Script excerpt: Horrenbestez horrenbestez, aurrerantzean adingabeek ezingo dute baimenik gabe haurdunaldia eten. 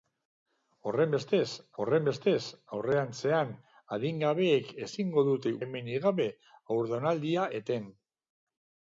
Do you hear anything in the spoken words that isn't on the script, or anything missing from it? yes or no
no